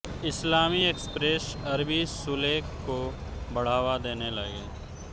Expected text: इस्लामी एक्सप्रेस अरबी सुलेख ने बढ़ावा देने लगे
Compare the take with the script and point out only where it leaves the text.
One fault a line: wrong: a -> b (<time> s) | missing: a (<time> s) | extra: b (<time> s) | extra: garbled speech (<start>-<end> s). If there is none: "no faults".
wrong: ने -> को (2.8 s)